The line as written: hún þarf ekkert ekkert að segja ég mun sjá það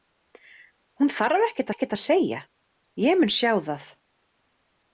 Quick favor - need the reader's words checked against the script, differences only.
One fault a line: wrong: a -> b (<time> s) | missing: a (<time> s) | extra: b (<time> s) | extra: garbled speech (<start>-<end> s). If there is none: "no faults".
no faults